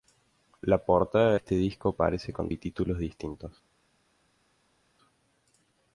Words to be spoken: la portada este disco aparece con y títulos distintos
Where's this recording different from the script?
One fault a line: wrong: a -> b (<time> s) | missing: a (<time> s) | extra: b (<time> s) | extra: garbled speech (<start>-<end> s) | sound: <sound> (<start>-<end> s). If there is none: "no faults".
no faults